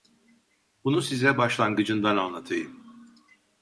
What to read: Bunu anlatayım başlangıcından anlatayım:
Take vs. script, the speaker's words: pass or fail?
fail